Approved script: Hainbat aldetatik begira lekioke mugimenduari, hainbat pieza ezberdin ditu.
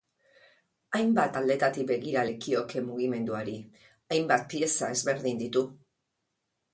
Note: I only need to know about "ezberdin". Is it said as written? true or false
true